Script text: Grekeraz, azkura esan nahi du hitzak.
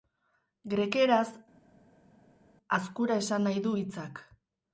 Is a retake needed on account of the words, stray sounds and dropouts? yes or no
no